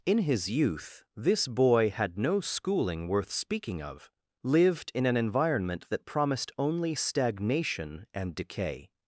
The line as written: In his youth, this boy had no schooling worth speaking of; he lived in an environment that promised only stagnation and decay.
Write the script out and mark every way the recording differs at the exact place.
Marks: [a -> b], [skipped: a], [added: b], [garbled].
In his youth, this boy had no schooling worth speaking of; [skipped: he] lived in an environment that promised only stagnation and decay.